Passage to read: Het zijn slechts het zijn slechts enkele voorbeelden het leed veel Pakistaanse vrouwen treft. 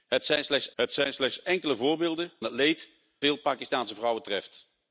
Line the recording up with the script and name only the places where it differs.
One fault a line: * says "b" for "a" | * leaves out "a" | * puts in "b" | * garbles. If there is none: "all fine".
all fine